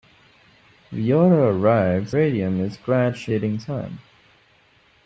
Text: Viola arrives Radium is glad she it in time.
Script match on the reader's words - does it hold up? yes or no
yes